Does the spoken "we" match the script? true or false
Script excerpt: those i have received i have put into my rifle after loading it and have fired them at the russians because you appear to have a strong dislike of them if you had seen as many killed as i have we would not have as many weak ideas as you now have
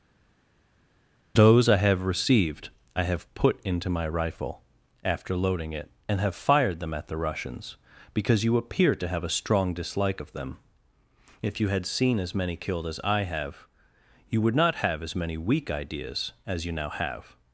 false